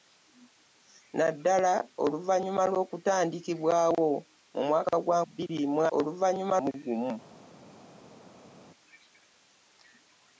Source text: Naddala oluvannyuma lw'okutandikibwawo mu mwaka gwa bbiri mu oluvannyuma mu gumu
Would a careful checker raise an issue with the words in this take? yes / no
no